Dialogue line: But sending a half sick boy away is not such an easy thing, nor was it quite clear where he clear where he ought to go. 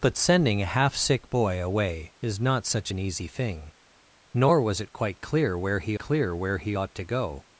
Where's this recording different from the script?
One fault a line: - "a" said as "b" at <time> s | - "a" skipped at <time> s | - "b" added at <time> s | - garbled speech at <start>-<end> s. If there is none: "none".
none